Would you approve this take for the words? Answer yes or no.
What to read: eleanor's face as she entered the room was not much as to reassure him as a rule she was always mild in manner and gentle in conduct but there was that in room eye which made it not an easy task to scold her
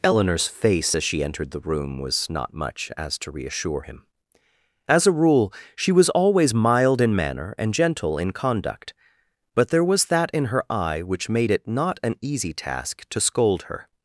no